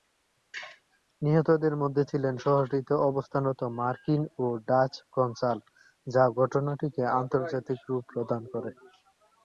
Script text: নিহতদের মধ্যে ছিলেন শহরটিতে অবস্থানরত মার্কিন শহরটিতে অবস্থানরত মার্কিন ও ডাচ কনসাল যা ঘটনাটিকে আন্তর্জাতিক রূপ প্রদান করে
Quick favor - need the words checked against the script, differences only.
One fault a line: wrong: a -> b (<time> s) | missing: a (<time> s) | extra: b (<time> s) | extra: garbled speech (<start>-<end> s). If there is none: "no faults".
missing: শহরটিতে অবস্থানরত মার্কিন (4.2 s)